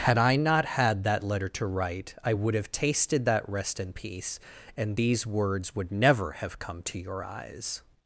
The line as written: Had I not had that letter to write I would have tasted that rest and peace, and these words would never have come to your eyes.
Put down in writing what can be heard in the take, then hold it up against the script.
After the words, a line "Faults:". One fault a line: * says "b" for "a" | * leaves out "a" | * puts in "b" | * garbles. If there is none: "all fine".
Had I not had that letter to write I would have tasted that rest and peace, and these words would never have come to your eyes.
Faults:
all fine